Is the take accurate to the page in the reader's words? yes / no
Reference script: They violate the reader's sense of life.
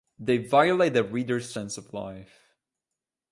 yes